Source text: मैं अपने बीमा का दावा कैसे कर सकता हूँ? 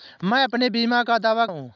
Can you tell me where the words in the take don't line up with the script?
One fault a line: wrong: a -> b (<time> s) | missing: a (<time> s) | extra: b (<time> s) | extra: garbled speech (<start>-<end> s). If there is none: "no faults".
missing: कैसे कर सकता (1.4 s)